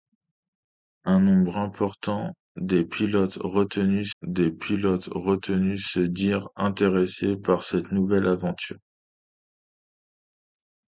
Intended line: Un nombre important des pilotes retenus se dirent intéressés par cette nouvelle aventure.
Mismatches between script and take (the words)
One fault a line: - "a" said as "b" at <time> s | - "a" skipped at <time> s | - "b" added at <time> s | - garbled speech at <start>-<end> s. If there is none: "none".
- "des pilotes retenus" added at 4.2 s